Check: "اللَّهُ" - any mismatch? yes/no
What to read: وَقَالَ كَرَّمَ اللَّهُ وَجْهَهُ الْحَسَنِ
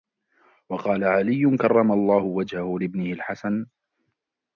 no